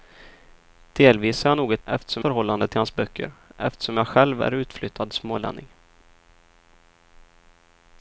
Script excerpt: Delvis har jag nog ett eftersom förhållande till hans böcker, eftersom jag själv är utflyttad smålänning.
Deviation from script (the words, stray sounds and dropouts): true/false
false